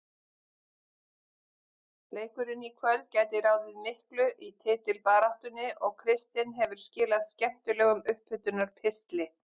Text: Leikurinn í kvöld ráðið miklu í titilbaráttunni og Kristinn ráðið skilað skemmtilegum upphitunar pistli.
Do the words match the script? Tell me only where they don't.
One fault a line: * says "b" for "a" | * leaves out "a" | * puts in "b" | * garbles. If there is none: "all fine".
* puts in "gæti"
* says "hefur" for "ráðið"